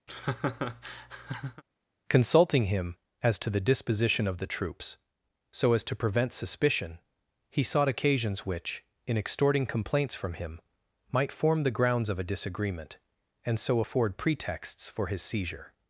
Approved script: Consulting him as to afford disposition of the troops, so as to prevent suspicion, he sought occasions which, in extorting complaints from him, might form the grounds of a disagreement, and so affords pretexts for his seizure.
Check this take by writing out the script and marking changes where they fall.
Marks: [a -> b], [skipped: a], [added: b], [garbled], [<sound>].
[laugh] Consulting him as to [afford -> the] disposition of the troops, so as to prevent suspicion, he sought occasions which, in extorting complaints from him, might form the grounds of a disagreement, and so [affords -> afford] pretexts for his seizure.